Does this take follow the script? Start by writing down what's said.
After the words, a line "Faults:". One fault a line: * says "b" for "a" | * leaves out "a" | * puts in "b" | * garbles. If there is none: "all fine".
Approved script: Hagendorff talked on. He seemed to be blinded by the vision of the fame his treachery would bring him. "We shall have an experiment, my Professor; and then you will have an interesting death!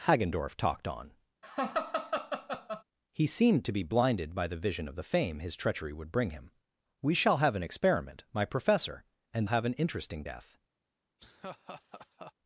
Hagendorff talked on. He seemed to be blinded by the vision of the fame his treachery would bring him. "We shall have an experiment, my Professor; and have an interesting death!
Faults:
* leaves out "then you will"